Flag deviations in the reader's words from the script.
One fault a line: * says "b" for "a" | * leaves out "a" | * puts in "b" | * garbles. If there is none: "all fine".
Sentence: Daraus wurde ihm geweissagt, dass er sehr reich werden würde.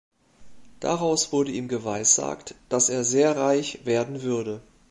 all fine